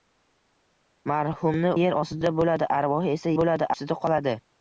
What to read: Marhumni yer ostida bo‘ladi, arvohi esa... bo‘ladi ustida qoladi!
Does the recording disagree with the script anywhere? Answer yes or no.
no